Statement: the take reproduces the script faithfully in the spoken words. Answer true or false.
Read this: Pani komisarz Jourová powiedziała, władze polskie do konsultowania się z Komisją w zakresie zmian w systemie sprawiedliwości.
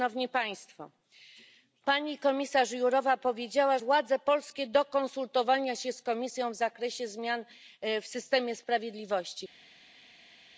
true